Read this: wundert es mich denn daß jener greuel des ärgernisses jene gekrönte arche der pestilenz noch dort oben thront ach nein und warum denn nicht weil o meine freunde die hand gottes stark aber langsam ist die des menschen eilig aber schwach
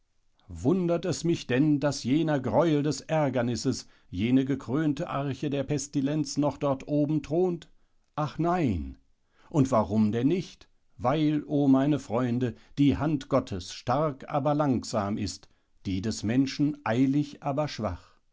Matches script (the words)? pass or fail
pass